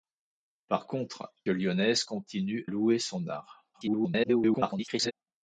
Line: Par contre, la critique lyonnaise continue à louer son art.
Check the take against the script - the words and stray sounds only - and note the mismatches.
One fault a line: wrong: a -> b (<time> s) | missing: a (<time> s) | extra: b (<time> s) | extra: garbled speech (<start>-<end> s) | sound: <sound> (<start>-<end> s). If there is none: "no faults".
missing: la critique (1.3 s)
missing: à (2.7 s)
extra: garbled speech (3.7-5.1 s)